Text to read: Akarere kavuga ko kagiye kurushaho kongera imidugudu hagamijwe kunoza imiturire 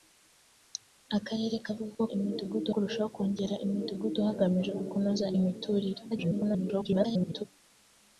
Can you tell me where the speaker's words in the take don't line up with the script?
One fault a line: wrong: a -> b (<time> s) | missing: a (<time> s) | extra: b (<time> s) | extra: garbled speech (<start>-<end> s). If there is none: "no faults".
wrong: kagiye -> imidugudu (2.1 s)
extra: garbled speech (6.1-7.4 s)